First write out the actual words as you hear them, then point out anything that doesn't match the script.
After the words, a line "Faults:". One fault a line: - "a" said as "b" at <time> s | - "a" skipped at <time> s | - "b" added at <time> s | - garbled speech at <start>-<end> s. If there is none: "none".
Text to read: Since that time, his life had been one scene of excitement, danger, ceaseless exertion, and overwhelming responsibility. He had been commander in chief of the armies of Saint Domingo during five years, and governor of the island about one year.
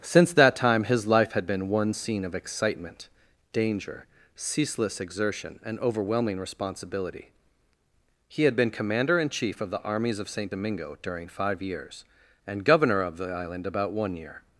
Since that time, his life had been one scene of excitement, danger, ceaseless exertion, and overwhelming responsibility. He had been commander in chief of the armies of Saint Domingo during five years, and governor of the island about one year.
Faults:
none